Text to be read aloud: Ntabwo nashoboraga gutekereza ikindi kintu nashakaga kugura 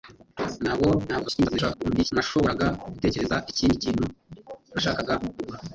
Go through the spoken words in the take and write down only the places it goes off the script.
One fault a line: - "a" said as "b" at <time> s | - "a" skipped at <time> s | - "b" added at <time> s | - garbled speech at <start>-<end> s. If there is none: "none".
- garbled speech at 1.1-2.1 s